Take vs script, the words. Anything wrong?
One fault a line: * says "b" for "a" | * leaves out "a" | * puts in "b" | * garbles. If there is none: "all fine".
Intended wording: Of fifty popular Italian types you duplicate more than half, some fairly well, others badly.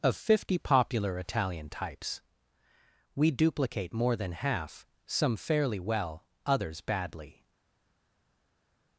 * says "we" for "you"